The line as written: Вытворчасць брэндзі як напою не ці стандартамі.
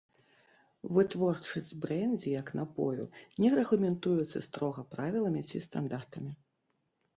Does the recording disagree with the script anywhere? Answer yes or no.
yes